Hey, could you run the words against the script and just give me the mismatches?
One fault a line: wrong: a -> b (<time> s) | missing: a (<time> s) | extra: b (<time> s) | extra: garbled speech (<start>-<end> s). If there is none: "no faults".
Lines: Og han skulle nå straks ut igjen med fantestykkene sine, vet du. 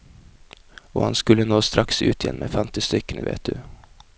missing: sine (3.2 s)